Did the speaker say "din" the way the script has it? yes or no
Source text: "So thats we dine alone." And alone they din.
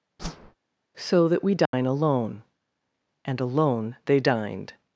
no